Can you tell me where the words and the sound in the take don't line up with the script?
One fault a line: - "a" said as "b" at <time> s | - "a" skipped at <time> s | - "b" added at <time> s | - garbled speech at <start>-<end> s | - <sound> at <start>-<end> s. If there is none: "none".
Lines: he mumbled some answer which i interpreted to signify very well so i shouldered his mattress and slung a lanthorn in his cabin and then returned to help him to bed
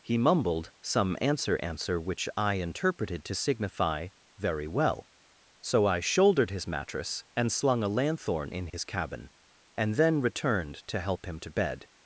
- "answer" added at 1.6 s
- dropout at 8.7-8.7 s